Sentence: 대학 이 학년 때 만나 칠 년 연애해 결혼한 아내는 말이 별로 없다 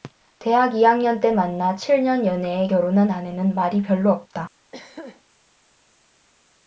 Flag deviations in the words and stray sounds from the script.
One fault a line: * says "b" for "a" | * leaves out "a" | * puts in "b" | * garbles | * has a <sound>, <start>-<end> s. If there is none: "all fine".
* has a throat clearing, 4.7-5.2 s